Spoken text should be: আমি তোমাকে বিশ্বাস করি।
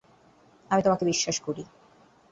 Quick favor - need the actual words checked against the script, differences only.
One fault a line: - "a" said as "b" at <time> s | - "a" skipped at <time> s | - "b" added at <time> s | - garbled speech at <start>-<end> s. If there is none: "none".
none